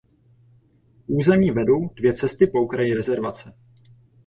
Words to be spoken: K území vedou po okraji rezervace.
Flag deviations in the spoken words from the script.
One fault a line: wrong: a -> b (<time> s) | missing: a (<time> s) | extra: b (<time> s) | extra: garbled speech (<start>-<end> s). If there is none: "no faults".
extra: dvě cesty (1.9 s)